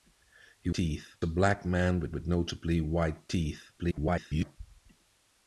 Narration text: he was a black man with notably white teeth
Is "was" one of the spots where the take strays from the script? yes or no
yes